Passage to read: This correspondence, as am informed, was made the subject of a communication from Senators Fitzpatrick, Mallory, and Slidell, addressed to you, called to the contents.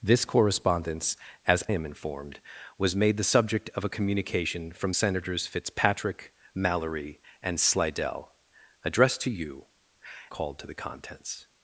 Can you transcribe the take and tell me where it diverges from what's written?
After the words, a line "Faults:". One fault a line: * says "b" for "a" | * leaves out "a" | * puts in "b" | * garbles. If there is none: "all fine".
This correspondence, as am informed, was made the subject of a communication from Senators Fitzpatrick, Mallory, and Slidell, addressed to you, called to the contents.
Faults:
all fine